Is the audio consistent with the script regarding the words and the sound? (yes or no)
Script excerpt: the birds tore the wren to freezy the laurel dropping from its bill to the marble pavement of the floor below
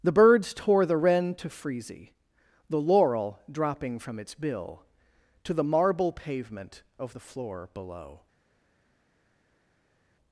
yes